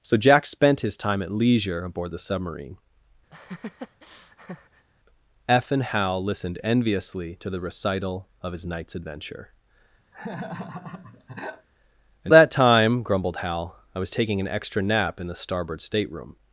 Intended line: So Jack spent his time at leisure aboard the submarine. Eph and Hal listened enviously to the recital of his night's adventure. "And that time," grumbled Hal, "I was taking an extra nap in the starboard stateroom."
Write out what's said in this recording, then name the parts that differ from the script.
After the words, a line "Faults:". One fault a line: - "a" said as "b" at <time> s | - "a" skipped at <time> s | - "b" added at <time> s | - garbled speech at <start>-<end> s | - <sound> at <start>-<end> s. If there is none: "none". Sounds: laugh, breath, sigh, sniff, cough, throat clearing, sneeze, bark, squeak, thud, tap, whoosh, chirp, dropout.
So Jack spent his time at leisure aboard the submarine. Eph and Hal listened enviously to the recital of his night's adventure. "And that time," grumbled Hal, "I was taking an extra nap in the starboard stateroom."
Faults:
- laugh at 3.3-4.9 s
- laugh at 10.1-11.7 s